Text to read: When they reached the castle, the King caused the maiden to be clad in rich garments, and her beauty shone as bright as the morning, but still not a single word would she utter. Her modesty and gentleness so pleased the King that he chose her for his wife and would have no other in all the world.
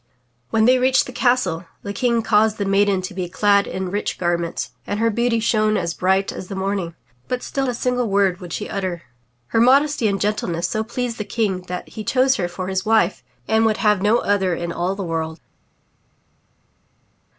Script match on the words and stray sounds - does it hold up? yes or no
no